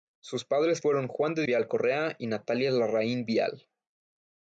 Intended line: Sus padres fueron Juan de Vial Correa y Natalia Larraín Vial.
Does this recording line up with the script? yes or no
yes